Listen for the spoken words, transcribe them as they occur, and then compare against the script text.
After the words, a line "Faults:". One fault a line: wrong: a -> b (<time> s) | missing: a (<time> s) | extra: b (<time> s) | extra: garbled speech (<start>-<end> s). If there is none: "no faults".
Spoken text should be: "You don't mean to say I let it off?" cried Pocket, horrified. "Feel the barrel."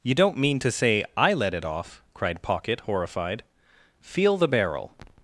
"You don't mean to say I let it off?" cried Pocket, horrified. "Feel the barrel."
Faults:
no faults